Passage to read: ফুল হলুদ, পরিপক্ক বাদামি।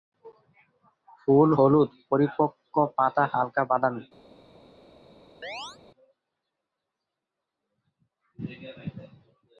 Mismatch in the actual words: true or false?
true